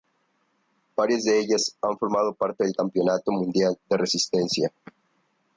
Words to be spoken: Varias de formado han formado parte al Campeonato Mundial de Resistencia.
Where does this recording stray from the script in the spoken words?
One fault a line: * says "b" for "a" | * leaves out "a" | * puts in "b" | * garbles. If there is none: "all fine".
* says "ellas" for "formado"
* says "del" for "al"